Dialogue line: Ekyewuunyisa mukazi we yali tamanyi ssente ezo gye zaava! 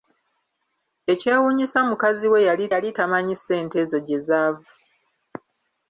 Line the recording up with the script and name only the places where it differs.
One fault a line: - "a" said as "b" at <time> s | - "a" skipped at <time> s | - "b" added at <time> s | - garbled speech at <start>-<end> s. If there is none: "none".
- "yali" added at 2.7 s